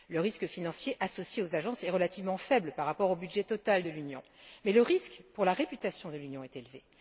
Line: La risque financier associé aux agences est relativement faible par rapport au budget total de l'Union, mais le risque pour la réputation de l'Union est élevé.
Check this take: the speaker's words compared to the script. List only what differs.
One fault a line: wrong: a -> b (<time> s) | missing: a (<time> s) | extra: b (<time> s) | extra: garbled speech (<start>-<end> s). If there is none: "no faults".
wrong: La -> Le (0.1 s)